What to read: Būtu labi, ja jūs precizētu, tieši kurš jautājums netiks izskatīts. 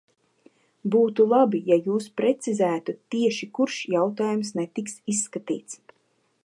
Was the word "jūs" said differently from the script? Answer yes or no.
no